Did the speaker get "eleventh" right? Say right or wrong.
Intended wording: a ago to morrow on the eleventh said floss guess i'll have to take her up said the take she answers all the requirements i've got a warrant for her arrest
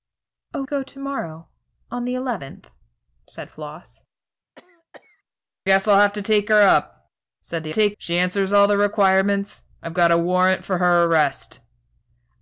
right